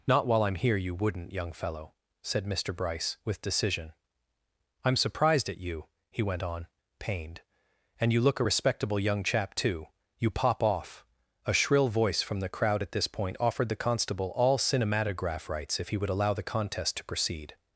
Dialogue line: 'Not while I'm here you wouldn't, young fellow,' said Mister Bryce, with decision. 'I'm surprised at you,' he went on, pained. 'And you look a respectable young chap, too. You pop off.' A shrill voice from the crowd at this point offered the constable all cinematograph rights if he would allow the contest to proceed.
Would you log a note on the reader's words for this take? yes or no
no